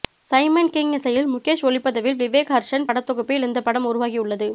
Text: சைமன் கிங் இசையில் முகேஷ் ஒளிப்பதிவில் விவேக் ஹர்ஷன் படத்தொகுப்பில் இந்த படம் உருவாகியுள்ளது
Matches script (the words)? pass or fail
pass